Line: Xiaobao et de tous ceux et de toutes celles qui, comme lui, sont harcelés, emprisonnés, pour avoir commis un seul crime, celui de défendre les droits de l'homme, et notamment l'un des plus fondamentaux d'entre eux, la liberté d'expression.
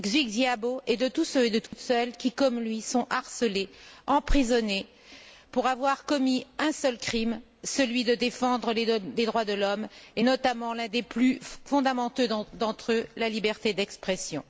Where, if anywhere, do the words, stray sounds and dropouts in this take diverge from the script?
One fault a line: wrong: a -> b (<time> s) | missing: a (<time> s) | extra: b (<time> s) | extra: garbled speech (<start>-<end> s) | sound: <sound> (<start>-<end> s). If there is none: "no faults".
sound: dropout (1.7-1.7 s)